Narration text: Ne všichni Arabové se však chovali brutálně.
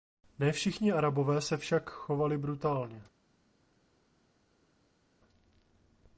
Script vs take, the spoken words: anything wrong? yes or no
no